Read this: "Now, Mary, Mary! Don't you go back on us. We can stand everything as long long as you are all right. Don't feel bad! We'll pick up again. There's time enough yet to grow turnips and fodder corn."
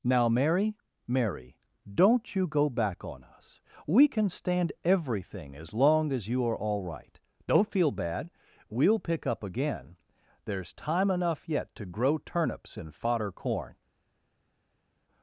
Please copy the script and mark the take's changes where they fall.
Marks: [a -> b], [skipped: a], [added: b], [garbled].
"Now, Mary, Mary! Don't you go back on us. We can stand everything as long [skipped: long] as you are all right. Don't feel bad! We'll pick up again. There's time enough yet to grow turnips and fodder corn."